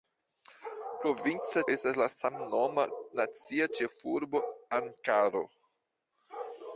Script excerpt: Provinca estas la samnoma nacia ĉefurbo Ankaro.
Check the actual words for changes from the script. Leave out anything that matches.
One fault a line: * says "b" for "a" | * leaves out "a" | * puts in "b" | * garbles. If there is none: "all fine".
all fine